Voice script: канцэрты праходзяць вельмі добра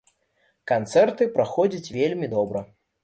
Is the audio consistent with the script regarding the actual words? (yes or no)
yes